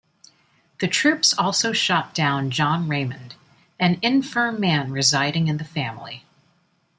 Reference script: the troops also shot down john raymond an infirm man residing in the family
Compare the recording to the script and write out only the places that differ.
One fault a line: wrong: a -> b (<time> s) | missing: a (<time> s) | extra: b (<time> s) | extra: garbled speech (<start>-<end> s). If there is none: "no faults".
no faults